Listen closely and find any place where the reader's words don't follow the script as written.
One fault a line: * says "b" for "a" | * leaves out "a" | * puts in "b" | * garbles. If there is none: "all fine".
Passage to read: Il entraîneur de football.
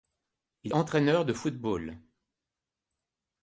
all fine